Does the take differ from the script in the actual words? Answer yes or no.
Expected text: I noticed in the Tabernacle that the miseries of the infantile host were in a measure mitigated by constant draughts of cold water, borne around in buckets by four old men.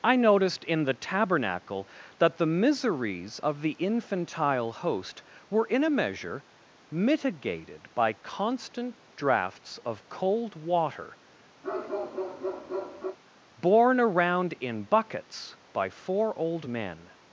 no